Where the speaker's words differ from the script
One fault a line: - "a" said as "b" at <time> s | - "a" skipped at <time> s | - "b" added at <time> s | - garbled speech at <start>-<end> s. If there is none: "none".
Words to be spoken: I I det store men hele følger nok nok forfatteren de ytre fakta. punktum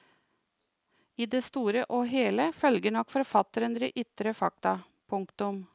- "I" skipped at 1.2 s
- "men" said as "og" at 1.9 s
- "nok" skipped at 3.1 s